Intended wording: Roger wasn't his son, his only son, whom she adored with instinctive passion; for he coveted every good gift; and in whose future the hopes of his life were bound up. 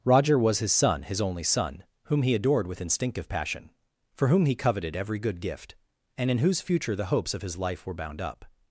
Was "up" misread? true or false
false